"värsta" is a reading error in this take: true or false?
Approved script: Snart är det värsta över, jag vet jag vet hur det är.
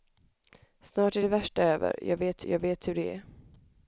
false